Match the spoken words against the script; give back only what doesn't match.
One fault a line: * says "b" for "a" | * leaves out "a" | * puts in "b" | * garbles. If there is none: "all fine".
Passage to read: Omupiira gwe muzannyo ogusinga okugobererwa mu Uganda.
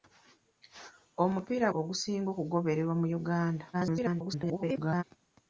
* leaves out "gwe muzannyo"
* garbles